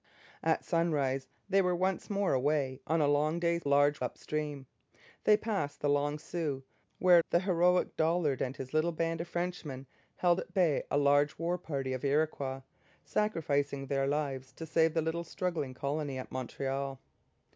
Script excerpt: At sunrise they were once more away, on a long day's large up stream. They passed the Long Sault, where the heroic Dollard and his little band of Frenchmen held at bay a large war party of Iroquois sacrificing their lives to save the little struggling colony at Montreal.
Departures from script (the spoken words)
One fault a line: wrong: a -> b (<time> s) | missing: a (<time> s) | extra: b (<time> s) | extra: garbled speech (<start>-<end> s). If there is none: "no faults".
no faults